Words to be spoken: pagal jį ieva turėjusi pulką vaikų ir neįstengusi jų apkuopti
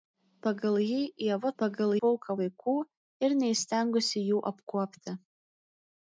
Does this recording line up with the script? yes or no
no